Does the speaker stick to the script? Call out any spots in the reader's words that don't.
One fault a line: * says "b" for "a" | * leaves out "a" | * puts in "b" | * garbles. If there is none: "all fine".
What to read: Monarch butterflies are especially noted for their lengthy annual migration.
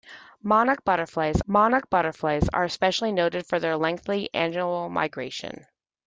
* puts in "monarch butterflies"